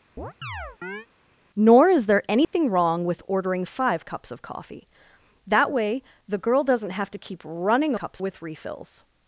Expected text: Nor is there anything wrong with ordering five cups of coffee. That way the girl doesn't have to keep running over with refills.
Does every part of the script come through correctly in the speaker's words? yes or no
no